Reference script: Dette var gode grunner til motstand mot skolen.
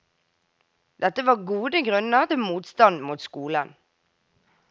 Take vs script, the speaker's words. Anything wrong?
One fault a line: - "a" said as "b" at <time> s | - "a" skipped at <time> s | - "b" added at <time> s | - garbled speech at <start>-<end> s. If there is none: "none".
none